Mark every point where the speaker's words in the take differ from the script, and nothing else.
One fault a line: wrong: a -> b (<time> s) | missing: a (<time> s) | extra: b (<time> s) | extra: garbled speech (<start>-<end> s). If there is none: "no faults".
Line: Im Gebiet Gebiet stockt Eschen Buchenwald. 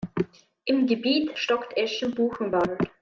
missing: Gebiet (1.4 s)